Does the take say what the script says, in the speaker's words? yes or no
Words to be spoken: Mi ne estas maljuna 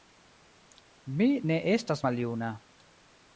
yes